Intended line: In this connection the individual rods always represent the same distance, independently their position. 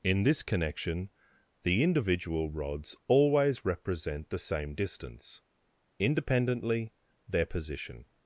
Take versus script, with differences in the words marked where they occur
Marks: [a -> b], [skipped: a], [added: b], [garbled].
In this connection the individual rods always represent the same distance, independently their position.